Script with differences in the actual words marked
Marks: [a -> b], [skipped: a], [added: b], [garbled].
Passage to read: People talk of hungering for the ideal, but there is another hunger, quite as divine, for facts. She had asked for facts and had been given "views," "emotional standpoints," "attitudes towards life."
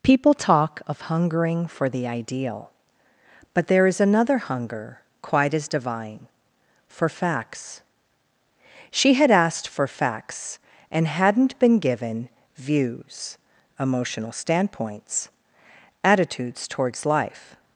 People talk of hungering for the ideal, but there is another hunger, quite as divine, for facts. She had asked for facts and [had -> hadn't] been given "views," "emotional standpoints," "attitudes towards life."